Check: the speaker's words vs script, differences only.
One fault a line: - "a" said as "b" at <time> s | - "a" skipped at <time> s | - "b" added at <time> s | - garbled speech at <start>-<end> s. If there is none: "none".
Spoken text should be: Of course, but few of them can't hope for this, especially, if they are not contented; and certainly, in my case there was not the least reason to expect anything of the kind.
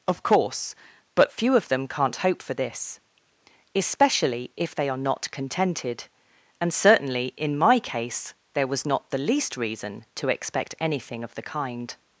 none